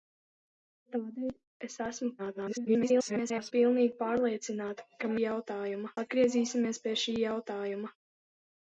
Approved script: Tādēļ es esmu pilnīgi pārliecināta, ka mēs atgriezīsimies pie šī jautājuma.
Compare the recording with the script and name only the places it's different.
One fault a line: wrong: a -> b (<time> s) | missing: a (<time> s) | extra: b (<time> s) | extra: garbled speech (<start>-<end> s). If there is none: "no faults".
extra: garbled speech (2.2-3.5 s)
wrong: mēs -> jautājuma (5.2 s)